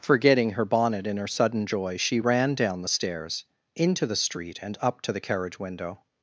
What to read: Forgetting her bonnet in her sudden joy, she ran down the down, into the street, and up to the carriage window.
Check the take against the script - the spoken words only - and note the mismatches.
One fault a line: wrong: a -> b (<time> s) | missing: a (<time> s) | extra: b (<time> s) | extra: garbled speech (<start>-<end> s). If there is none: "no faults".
wrong: down -> stairs (2.9 s)